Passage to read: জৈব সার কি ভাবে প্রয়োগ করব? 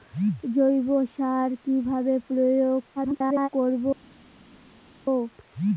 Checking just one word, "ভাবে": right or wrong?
right